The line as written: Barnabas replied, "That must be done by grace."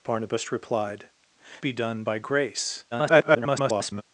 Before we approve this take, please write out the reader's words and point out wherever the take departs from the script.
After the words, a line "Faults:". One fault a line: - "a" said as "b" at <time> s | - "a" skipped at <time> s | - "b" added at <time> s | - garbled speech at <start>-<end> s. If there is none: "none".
Barnabas replied, "Be done by grace." [garbled]
Faults:
- "That must" skipped at 1.1 s
- garbled speech at 2.9-4.0 s